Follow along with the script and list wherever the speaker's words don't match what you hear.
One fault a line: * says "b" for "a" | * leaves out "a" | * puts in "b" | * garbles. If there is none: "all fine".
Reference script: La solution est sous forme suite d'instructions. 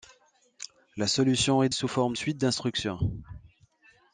all fine